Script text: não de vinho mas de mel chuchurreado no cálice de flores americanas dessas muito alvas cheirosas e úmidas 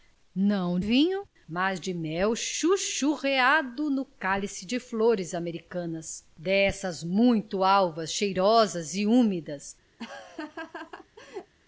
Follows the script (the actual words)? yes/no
no